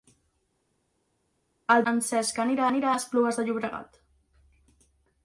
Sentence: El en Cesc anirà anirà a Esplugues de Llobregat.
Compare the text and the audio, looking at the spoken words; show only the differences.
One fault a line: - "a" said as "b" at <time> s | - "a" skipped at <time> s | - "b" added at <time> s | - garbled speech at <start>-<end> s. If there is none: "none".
none